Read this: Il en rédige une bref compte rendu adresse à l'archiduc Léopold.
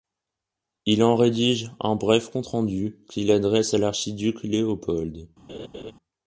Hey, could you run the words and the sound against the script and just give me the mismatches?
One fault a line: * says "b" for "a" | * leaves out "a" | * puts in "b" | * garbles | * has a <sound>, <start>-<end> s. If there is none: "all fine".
* says "un" for "une"
* puts in "qu'il"
* has a laugh, 5.5-5.9 s